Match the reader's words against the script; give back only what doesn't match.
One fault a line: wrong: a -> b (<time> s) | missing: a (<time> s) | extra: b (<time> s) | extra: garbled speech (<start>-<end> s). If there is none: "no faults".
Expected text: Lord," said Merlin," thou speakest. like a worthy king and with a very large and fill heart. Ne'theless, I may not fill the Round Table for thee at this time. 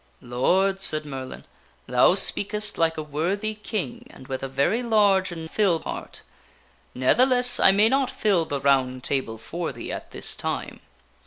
no faults